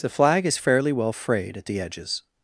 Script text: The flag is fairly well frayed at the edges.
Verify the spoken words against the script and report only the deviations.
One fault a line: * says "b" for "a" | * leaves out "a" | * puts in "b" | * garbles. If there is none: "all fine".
all fine